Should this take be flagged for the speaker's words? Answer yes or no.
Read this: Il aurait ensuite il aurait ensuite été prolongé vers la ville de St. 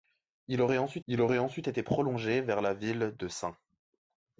no